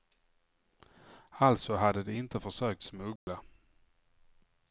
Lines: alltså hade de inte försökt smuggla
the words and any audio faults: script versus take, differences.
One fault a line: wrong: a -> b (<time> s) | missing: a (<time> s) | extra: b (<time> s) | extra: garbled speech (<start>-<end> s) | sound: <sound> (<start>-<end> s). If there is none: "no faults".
sound: dropout (3.2-3.3 s)